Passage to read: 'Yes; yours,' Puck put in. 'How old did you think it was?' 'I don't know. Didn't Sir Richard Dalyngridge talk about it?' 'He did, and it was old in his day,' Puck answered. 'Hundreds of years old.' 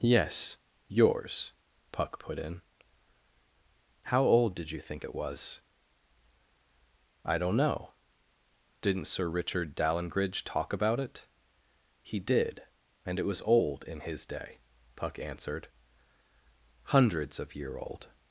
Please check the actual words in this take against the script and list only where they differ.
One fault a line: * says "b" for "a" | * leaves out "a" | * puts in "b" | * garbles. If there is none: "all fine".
* says "year" for "years"